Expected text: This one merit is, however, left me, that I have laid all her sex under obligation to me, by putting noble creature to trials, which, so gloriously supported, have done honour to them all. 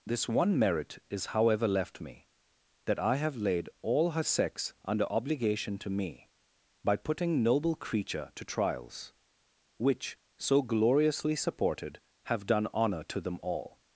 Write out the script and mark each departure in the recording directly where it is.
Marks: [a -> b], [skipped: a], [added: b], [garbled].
This one merit is, however, left me, that I have laid all her sex under obligation to me, by putting noble creature to trials, which, so gloriously supported, have done honour to them all.